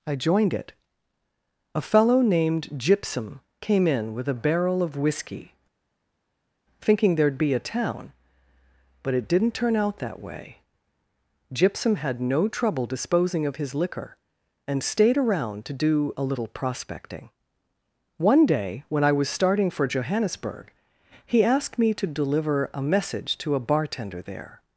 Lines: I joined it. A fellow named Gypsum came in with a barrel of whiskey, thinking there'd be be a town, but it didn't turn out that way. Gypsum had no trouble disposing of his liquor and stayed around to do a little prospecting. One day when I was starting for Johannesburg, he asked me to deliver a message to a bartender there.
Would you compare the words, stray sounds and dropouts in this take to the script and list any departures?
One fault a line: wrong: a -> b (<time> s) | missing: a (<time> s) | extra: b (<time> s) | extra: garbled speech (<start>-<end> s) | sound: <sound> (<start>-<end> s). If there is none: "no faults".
missing: be (7.5 s)